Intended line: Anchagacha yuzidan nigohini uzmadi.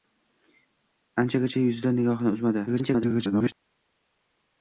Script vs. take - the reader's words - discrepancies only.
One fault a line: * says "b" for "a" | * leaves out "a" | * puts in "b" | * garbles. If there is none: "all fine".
* garbles